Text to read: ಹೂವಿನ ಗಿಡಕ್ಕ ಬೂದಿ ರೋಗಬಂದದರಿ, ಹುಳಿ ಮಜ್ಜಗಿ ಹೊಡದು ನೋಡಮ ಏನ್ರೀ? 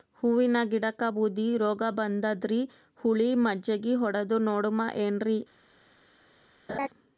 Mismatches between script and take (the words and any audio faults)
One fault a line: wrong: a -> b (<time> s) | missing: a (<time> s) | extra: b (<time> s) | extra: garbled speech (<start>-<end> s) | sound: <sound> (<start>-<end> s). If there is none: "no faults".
sound: laugh (6.7-6.9 s)